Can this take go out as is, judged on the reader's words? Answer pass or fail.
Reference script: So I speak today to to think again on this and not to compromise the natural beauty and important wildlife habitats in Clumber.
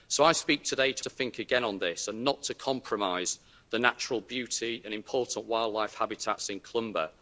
pass